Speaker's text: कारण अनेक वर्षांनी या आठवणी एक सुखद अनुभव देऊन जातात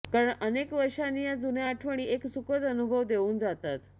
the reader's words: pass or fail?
fail